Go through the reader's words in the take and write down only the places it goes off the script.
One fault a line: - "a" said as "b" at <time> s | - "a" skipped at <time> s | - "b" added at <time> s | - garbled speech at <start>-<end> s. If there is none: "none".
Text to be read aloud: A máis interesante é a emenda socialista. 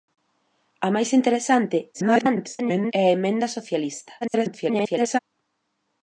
- garbled speech at 1.9-2.9 s
- garbled speech at 4.2-5.2 s